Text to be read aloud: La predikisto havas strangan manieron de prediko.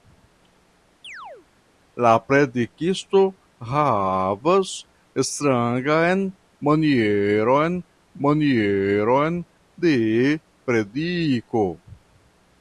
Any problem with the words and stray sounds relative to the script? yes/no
yes